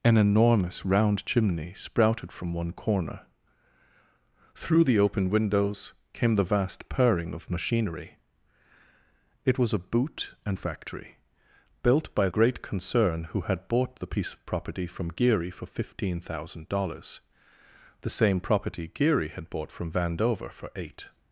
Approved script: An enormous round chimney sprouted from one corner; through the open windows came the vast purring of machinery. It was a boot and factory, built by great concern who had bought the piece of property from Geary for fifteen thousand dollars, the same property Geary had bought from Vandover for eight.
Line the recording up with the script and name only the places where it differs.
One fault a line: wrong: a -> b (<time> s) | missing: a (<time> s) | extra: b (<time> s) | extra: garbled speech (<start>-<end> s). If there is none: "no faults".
no faults